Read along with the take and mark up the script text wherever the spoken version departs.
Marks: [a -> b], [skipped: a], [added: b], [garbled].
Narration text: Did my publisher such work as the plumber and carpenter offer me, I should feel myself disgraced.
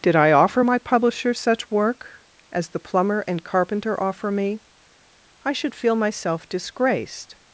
Did [added: I offer] my publisher such work as the plumber and carpenter offer me, I should feel myself disgraced.